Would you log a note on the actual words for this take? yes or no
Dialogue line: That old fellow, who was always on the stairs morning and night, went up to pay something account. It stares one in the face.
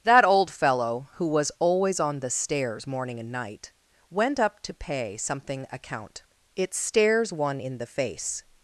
no